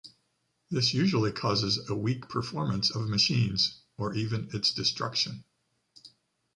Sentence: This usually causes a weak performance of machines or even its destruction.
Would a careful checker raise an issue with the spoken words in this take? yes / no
no